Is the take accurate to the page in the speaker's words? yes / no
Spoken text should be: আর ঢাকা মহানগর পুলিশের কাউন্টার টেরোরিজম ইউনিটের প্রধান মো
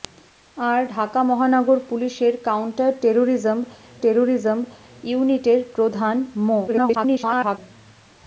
no